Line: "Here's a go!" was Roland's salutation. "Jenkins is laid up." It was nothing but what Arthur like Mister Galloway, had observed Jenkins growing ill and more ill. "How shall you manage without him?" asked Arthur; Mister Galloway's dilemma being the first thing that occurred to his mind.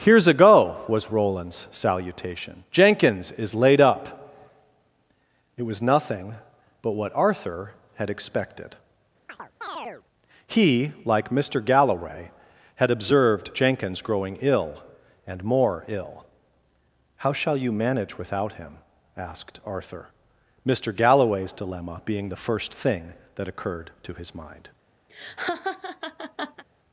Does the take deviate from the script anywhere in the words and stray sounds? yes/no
yes